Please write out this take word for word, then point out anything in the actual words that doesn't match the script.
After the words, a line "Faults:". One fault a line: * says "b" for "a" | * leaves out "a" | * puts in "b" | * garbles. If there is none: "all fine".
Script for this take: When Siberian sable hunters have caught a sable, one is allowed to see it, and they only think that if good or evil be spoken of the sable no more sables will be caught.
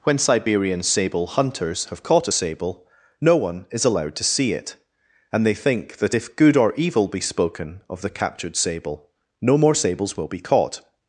When Siberian sable hunters have caught a sable, no one is allowed to see it, and they think that if good or evil be spoken of the captured sable no more sables will be caught.
Faults:
* puts in "no"
* leaves out "only"
* puts in "captured"